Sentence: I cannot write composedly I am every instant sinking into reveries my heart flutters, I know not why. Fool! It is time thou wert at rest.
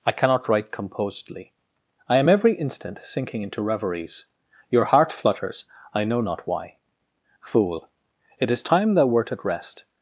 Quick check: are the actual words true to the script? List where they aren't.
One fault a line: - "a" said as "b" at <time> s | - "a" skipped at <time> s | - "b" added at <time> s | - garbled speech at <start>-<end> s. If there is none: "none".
- "my" said as "your" at 4.7 s